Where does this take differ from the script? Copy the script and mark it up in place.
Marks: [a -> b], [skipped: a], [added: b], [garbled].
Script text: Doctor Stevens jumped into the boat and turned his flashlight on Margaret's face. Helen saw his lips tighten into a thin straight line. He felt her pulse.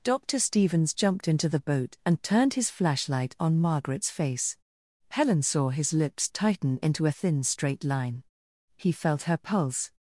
Doctor Stevens jumped into the boat and turned his flashlight on Margaret's face. Helen saw his lips tighten into a thin straight line. He felt her pulse.